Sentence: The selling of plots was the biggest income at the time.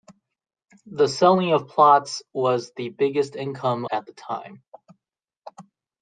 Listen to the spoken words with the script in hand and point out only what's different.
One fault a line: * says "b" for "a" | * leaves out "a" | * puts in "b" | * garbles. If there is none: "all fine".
all fine